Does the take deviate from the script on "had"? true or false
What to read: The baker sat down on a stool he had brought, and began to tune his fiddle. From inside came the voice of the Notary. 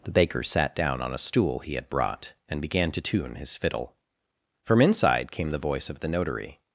false